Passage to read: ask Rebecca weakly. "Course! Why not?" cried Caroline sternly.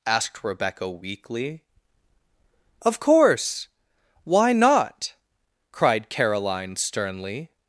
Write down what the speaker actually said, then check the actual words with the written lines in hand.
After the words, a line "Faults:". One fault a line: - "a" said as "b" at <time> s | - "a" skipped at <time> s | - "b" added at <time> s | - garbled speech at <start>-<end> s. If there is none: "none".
asked Rebecca weakly. "Of course! Why not?" cried Caroline sternly.
Faults:
- "ask" said as "asked" at 0.1 s
- "Of" added at 2.8 s